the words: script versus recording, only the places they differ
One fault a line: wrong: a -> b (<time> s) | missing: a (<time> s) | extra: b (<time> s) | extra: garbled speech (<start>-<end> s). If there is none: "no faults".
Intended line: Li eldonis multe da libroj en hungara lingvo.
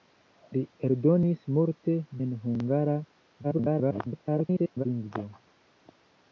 missing: da libroj (1.9 s)
extra: garbled speech (3.4-4.8 s)